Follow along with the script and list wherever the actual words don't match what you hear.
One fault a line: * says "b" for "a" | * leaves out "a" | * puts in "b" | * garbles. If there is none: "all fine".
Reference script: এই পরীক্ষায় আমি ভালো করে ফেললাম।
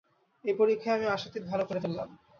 * puts in "আশাতীত"